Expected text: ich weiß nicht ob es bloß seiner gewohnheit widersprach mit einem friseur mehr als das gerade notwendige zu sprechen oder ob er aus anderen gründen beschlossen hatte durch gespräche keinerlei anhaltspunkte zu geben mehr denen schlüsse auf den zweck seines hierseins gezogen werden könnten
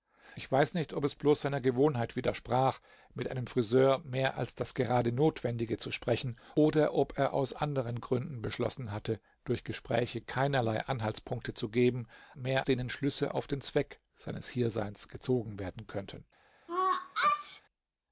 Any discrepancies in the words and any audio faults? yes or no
yes